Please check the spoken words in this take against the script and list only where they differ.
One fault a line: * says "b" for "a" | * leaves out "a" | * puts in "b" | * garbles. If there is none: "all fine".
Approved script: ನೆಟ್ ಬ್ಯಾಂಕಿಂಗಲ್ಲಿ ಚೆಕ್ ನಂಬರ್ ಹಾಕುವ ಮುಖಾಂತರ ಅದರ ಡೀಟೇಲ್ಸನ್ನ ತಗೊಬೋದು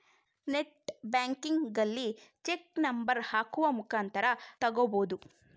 * leaves out "ಅದರ ಡೀಟೇಲ್ಸನ್ನ"